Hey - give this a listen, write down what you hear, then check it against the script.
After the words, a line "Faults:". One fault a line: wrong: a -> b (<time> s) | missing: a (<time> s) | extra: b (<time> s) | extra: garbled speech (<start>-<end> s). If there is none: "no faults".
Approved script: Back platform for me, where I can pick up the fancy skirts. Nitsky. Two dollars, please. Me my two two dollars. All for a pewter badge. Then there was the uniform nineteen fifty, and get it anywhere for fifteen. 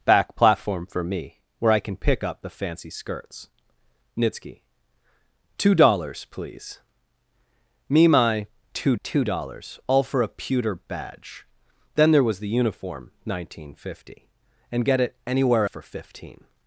Back platform for me, where I can pick up the fancy skirts. Nitsky. Two dollars, please. Me my two two dollars. All for a pewter badge. Then there was the uniform nineteen fifty, and get it anywhere for fifteen.
Faults:
no faults